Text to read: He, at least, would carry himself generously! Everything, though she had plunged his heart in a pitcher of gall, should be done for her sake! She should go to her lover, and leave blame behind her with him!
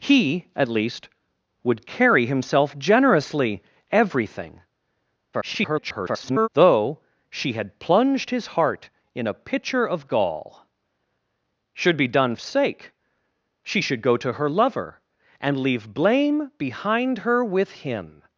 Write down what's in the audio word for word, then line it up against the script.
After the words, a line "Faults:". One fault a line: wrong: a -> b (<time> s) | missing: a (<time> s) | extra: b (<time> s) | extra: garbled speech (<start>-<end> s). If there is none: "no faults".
He, at least, would carry himself generously! Everything, [garbled] though she had plunged his heart in a pitcher of gall, should be done sake! She should go to her lover, and leave blame behind her with him!
Faults:
extra: garbled speech (5.3-6.5 s)
missing: for her (12.4 s)